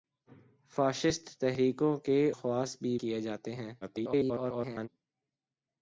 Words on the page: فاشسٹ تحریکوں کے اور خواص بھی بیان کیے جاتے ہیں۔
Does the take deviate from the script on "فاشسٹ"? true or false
false